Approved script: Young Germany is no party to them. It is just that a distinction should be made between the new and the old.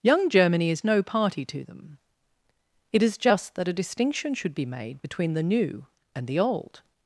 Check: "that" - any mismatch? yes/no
no